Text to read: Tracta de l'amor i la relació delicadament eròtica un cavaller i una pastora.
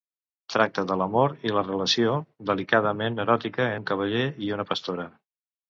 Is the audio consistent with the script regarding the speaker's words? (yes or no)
yes